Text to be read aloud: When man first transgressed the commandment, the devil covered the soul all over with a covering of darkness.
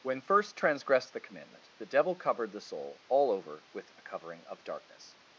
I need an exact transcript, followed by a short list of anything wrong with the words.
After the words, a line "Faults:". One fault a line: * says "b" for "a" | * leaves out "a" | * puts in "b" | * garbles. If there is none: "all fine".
When first transgressed the commandment, the devil covered the soul all over with a covering of darkness.
Faults:
* leaves out "man"